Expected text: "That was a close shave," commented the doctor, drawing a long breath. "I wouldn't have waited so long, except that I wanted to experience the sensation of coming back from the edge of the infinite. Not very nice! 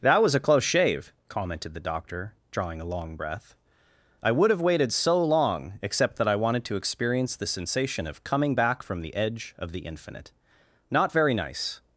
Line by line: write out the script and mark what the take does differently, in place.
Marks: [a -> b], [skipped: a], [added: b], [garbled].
"That was a close shave," commented the doctor, drawing a long breath. "I [wouldn't -> would] have waited so long, except that I wanted to experience the sensation of coming back from the edge of the infinite. Not very nice!